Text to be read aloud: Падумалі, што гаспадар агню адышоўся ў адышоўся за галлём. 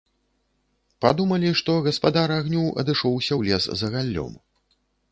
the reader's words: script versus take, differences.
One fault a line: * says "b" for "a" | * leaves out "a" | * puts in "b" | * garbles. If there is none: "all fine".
* says "лес" for "адышоўся"